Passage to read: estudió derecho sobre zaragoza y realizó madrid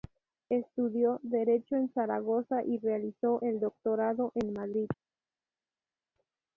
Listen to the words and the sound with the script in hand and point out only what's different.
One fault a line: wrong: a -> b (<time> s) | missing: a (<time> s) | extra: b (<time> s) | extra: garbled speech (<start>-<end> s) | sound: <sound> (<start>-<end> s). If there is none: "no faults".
wrong: sobre -> en (1.8 s)
extra: el doctorado en (3.4 s)